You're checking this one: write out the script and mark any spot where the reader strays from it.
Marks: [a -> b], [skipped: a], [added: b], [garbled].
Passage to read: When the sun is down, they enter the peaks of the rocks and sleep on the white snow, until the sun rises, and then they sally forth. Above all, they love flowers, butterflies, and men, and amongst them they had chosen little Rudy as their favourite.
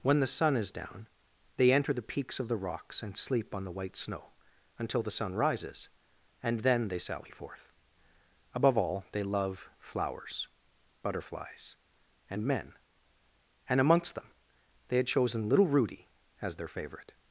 When the sun is down, they enter the peaks of the rocks and sleep on the white snow, until the sun rises, and then they sally forth. Above all, they love flowers, butterflies, and men, and amongst them they had chosen little Rudy as their favourite.